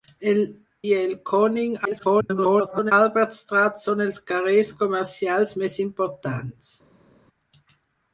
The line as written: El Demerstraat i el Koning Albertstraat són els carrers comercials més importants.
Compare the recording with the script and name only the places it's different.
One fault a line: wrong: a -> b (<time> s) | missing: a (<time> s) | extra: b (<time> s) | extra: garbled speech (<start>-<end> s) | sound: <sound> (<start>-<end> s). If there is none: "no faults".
missing: Demerstraat (0.4 s)
extra: garbled speech (1.8-2.9 s)